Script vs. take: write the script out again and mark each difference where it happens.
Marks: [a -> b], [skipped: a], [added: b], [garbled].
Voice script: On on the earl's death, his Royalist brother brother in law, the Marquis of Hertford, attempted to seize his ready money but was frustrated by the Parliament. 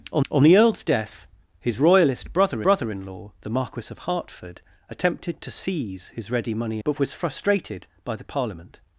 On on the earl's death, his Royalist brother brother in law, the Marquis of Hertford, attempted to seize his ready money but was frustrated by the Parliament.